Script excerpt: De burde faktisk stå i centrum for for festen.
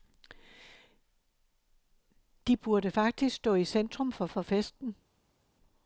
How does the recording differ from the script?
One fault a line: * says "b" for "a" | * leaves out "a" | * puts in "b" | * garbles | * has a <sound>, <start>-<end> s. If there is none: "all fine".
all fine